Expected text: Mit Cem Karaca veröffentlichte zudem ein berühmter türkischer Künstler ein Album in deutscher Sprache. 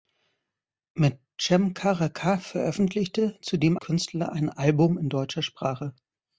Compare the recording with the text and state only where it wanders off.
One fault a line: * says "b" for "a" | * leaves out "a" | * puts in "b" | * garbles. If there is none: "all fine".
* leaves out "ein berühmter türkischer"